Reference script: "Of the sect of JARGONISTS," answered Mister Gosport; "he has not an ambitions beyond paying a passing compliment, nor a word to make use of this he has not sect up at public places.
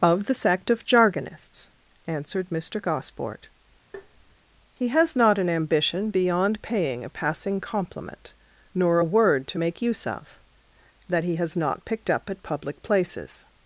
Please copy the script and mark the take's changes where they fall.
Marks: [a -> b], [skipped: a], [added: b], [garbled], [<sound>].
"Of the sect of JARGONISTS," answered Mister Gosport; [tap] "he has not an [ambitions -> ambition] beyond paying a passing compliment, nor a word to make use of [this -> that] he has not [sect -> picked] up at public places.